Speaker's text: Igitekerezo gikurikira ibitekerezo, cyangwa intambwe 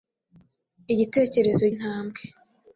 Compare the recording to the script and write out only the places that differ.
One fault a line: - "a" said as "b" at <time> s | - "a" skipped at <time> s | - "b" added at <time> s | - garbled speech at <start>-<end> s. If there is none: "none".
- "gikurikira ibitekerezo cyangwa" skipped at 1.6 s